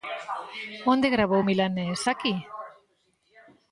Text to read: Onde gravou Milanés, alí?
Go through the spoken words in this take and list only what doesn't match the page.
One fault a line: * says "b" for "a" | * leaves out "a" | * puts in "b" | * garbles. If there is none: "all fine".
* says "aquí" for "alí"